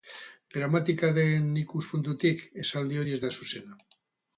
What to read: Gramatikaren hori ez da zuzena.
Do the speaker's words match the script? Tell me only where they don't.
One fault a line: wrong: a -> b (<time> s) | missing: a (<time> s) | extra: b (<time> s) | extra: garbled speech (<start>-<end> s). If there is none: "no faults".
extra: ikuspuntutik esaldi (1.6 s)